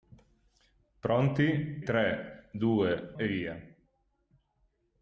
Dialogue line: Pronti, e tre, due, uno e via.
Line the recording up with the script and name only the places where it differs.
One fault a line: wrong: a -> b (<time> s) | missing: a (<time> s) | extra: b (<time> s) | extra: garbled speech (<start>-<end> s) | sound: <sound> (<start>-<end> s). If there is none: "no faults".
missing: e (1.8 s)
missing: uno (3.1 s)